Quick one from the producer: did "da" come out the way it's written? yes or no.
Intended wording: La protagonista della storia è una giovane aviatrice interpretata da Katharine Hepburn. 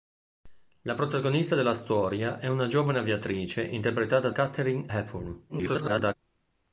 no